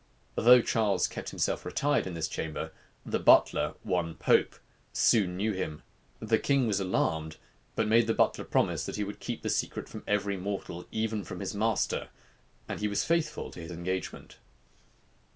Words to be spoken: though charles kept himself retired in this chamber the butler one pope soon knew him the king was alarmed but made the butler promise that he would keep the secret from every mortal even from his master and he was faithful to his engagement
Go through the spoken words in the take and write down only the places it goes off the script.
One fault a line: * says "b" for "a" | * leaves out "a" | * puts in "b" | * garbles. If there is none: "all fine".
all fine